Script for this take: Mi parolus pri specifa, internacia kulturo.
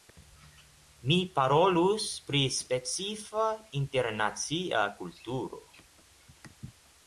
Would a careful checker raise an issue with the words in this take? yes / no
no